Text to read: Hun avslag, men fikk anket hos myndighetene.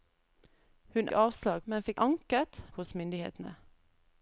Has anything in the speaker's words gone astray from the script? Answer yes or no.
no